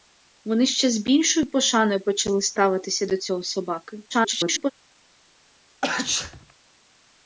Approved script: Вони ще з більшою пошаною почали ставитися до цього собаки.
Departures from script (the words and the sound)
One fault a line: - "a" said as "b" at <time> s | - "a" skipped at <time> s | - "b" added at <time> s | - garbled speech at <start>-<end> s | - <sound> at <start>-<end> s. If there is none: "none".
- garbled speech at 4.1-4.7 s
- sneeze at 5.8-6.5 s